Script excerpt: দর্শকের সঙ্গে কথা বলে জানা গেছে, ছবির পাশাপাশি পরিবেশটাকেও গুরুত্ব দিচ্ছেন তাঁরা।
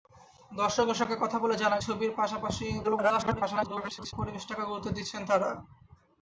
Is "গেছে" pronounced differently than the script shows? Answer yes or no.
yes